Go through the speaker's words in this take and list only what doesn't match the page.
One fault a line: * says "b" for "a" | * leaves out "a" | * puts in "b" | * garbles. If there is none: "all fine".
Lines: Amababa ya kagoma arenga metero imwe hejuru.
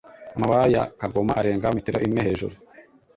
all fine